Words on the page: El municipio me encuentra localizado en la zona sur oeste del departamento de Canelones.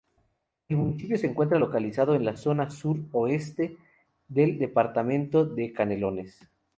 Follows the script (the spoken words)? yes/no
no